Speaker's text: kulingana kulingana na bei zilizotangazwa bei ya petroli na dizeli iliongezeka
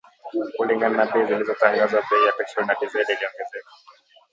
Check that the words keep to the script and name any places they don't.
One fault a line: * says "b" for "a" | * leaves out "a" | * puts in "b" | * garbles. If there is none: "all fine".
* leaves out "kulingana"